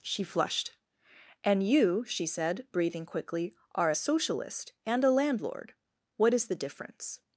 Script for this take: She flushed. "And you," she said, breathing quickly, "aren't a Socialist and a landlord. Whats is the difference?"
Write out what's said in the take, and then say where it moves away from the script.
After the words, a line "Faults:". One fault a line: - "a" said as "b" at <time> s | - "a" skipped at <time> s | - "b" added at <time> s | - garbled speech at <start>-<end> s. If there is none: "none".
She flushed. "And you," she said, breathing quickly, "are a Socialist and a landlord. What is the difference?"
Faults:
- "aren't" said as "are" at 3.8 s
- "Whats" said as "What" at 6.2 s